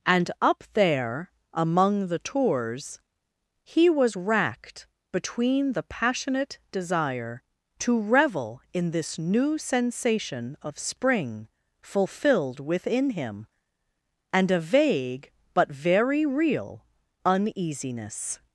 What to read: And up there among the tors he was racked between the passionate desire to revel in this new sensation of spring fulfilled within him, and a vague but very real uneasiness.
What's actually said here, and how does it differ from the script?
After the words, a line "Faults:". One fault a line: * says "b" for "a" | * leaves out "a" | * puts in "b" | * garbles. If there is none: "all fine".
And up there among the tors he was racked between the passionate desire to revel in this new sensation of spring fulfilled within him, and a vague but very real uneasiness.
Faults:
all fine